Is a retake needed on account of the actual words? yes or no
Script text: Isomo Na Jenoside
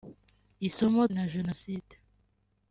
no